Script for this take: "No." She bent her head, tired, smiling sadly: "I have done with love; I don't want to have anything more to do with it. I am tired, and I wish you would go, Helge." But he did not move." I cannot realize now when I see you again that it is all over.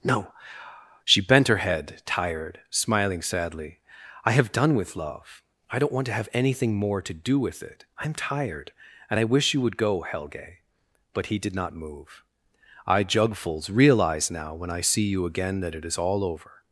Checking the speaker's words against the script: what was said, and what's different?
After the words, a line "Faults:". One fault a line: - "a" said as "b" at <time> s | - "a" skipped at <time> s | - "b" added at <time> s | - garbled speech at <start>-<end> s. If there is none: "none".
"No." She bent her head, tired, smiling sadly: "I have done with love; I don't want to have anything more to do with it. I am tired, and I wish you would go, Helge." But he did not move." I jugfuls realize now when I see you again that it is all over.
Faults:
- "cannot" said as "jugfuls" at 13.0 s